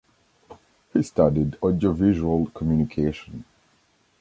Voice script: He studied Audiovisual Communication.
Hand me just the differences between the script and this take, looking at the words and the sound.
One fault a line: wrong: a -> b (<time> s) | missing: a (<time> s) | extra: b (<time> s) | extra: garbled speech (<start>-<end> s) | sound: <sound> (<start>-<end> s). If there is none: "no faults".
no faults